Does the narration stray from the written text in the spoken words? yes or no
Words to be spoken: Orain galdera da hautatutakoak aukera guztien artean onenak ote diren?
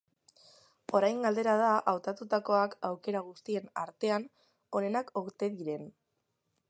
no